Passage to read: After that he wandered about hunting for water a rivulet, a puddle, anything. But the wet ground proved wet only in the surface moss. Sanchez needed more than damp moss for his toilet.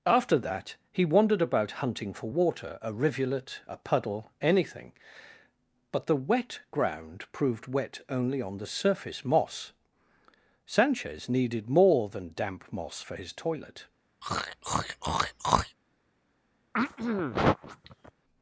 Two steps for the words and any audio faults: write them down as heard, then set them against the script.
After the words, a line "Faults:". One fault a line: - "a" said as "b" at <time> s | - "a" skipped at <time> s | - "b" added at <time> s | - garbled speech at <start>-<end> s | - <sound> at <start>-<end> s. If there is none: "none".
After that he wandered about hunting for water a rivulet, a puddle, anything. But the wet ground proved wet only on the surface moss. Sanchez needed more than damp moss for his toilet.
Faults:
- "in" said as "on" at 8.4 s
- throat clearing at 14.2-15.8 s
- throat clearing at 16.7-18.1 s